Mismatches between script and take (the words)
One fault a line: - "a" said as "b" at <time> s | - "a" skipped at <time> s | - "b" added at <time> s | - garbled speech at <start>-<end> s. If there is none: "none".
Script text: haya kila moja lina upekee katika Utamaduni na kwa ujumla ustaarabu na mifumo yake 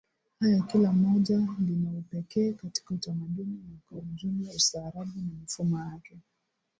none